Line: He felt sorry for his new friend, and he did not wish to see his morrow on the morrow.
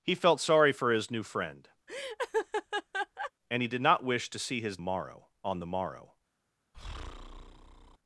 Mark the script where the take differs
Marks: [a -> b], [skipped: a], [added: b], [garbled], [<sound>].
He felt sorry for his new friend, [laugh] and he did not wish to see his morrow on the morrow. [breath]